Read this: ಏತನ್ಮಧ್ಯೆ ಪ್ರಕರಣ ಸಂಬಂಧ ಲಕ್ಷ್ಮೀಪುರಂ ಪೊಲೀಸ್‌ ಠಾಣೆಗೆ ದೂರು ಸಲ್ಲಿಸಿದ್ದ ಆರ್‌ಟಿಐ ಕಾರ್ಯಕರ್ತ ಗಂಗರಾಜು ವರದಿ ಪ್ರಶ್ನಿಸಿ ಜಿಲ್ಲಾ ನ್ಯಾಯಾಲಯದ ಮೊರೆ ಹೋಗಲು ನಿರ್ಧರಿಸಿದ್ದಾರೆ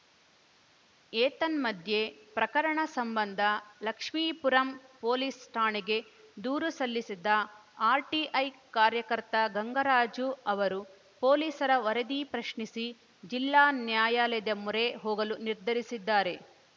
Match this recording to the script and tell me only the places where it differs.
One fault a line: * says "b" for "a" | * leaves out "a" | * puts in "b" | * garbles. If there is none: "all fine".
* puts in "ಅವರು ಪೊಲೀಸರ"